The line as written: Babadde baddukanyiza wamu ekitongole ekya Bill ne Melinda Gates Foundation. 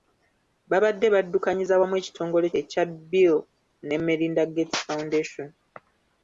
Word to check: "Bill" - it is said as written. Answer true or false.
true